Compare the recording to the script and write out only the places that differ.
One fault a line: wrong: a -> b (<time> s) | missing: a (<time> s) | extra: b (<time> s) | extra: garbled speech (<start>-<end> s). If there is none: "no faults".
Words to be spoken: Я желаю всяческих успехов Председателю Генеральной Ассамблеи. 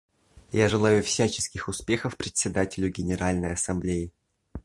no faults